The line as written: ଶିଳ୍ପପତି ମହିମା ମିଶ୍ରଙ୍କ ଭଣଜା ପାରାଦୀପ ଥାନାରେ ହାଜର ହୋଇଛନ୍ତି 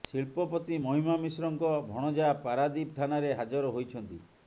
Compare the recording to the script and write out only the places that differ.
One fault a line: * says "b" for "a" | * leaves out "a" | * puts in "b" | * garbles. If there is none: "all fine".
all fine